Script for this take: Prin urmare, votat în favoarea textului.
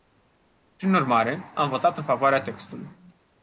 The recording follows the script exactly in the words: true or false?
false